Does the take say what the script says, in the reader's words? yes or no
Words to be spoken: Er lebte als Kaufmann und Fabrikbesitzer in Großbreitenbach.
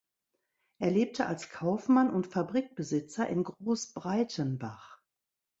yes